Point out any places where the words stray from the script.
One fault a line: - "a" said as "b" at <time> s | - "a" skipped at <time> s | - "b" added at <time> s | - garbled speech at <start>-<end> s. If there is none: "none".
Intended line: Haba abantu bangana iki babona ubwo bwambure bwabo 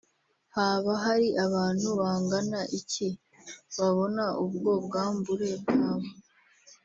- "hari" added at 1.1 s